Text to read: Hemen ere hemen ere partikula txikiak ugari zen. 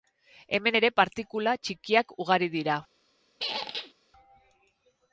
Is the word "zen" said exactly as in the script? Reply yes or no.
no